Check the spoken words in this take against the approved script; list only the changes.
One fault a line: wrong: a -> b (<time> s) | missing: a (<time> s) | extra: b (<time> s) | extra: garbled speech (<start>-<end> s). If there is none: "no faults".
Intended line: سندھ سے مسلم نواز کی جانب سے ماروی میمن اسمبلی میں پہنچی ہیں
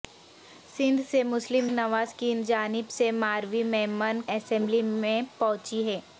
no faults